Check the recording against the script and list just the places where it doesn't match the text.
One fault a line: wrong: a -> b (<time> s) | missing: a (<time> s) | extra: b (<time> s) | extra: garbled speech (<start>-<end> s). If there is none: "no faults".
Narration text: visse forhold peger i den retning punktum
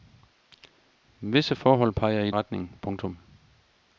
missing: den (2.3 s)